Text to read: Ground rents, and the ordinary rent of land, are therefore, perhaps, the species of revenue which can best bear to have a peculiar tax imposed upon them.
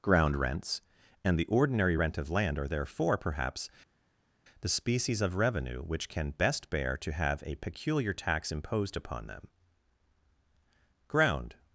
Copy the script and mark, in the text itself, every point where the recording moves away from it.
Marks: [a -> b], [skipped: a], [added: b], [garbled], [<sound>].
Ground rents, and the ordinary rent of land, are therefore, perhaps, the species of revenue which can best bear to have a peculiar tax imposed upon them. [added: Ground]